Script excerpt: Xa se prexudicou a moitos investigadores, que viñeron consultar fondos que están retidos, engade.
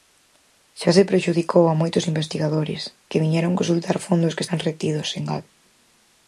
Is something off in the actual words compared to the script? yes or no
no